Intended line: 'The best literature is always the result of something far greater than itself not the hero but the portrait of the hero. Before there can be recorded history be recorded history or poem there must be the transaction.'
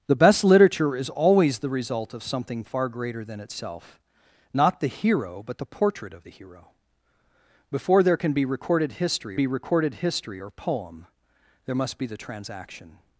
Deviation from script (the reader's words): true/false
false